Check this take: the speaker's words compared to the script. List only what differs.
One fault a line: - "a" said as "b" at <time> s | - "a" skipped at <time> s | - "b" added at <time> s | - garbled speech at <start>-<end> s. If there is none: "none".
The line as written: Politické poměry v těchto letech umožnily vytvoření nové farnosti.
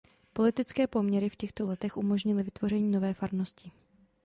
none